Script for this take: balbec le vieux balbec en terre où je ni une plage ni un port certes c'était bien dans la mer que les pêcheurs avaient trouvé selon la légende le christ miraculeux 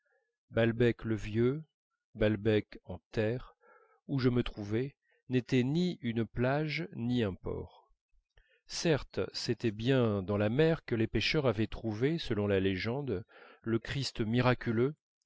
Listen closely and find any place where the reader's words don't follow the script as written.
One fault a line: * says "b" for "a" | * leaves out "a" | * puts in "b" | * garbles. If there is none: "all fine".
* puts in "me trouvais n'était"